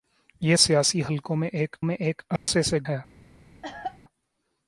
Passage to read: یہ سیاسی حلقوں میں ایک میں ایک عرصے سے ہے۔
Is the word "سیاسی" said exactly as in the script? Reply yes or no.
yes